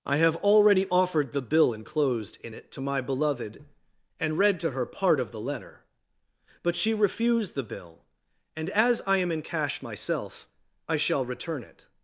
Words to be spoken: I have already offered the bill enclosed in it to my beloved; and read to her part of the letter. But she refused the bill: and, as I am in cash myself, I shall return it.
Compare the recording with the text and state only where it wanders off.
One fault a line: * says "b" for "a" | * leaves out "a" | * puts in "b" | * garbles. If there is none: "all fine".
all fine